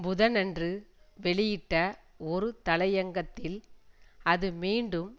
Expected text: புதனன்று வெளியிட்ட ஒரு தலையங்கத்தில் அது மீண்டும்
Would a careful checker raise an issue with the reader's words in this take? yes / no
no